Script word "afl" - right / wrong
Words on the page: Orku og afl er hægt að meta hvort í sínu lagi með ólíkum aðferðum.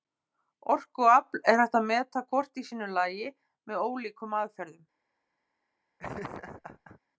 right